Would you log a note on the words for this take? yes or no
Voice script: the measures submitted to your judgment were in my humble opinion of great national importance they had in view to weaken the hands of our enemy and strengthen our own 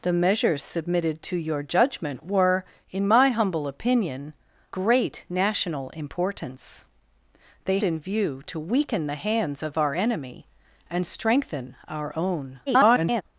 yes